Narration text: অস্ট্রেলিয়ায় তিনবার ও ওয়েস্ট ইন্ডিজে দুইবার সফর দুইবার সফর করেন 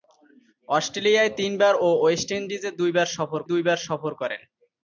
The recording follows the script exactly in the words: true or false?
true